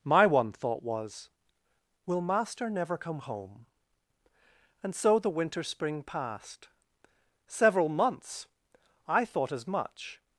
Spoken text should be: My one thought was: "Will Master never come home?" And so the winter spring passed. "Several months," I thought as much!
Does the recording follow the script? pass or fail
pass